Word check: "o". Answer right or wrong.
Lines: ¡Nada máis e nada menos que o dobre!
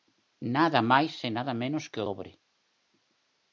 right